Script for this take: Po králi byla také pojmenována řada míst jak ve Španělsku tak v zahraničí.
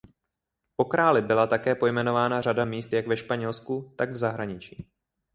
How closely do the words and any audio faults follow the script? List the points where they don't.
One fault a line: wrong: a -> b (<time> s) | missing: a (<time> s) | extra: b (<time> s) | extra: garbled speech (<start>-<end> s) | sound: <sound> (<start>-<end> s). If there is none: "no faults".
no faults